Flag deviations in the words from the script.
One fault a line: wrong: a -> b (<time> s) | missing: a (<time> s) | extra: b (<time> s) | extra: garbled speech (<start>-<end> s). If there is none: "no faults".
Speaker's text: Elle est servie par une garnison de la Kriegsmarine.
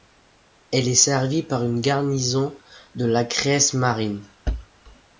no faults